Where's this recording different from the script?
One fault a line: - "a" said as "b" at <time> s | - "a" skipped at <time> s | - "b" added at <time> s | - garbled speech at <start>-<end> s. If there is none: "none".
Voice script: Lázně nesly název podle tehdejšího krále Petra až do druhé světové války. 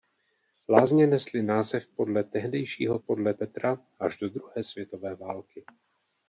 - "krále" said as "podle" at 3.0 s